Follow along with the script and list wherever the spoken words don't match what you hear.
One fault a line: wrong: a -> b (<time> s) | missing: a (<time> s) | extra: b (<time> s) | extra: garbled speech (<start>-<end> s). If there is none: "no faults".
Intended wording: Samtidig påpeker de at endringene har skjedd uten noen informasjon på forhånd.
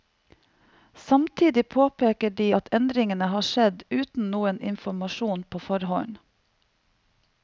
no faults